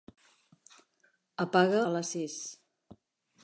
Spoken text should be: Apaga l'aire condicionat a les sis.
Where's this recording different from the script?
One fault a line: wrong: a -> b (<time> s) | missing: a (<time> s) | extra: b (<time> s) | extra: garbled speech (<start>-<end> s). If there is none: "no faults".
missing: l'aire condicionat (1.8 s)